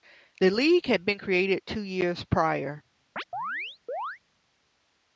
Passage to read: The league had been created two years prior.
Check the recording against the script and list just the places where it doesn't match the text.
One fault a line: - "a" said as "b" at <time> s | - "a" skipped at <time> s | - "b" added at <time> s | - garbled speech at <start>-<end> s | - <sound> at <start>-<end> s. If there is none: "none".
- chirp at 3.2-4.2 s